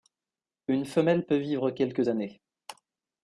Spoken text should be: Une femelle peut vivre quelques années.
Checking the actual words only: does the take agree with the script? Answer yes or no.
yes